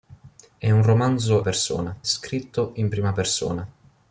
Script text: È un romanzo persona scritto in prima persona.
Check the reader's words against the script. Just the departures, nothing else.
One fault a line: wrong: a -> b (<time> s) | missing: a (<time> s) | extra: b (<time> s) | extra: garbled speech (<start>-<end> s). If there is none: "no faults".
no faults